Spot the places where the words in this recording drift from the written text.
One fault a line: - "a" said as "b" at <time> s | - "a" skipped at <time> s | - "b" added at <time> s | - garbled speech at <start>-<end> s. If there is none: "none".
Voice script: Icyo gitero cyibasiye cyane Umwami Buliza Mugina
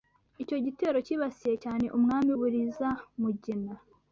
none